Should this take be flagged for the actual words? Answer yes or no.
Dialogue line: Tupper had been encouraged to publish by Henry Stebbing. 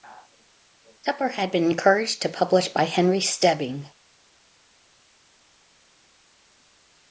no